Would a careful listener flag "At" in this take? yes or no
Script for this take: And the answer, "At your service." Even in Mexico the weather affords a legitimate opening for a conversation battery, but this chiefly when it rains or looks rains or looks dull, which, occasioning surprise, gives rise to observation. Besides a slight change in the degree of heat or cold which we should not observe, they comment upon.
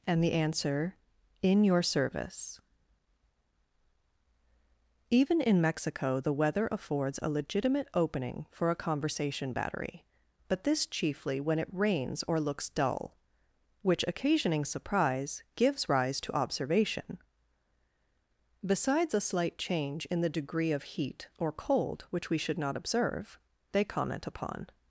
yes